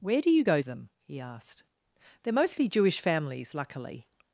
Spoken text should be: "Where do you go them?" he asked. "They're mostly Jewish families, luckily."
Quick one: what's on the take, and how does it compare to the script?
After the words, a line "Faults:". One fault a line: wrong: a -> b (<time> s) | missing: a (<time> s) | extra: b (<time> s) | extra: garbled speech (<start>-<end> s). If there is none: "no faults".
"Where do you go them?" he asked. "They're mostly Jewish families, luckily."
Faults:
no faults